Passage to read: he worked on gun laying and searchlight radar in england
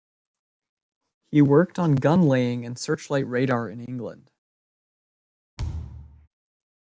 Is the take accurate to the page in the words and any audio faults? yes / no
no